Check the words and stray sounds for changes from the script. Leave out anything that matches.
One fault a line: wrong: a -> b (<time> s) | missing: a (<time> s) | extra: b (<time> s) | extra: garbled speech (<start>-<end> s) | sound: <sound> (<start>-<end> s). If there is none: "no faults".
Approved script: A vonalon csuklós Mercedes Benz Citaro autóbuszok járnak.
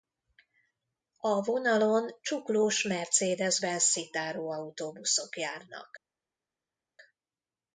no faults